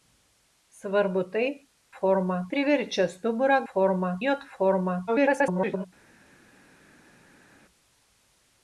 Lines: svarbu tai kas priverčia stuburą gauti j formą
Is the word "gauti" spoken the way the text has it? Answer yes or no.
no